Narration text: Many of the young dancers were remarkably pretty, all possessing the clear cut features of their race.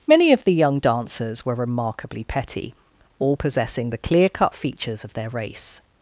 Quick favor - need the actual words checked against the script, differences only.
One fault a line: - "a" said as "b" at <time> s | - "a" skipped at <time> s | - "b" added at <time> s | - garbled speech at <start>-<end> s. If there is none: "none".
- "pretty" said as "petty" at 2.2 s